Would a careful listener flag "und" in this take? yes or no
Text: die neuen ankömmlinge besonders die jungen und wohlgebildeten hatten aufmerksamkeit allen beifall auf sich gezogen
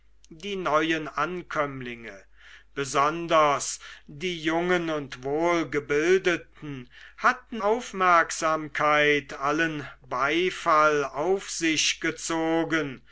no